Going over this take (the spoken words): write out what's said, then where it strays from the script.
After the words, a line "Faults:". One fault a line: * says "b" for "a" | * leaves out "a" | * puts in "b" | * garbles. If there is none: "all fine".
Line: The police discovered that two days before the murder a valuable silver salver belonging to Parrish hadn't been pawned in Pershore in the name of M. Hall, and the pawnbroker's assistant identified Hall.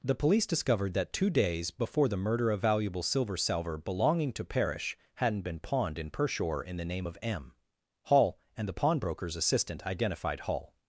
The police discovered that two days before the murder a valuable silver salver belonging to Parrish hadn't been pawned in Pershore in the name of M. Hall, and the pawnbroker's assistant identified Hall.
Faults:
all fine